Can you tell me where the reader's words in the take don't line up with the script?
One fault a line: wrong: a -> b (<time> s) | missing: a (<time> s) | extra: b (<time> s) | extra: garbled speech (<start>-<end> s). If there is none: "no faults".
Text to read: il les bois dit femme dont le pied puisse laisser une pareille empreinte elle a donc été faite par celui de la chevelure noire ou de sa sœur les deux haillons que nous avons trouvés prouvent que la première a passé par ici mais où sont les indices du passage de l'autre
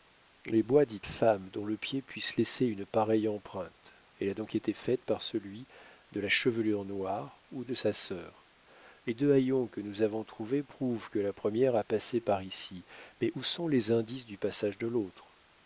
no faults